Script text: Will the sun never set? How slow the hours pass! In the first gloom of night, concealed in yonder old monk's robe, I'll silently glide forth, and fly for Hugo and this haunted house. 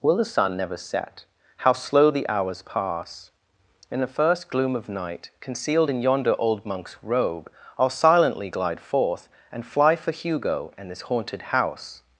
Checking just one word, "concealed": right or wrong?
right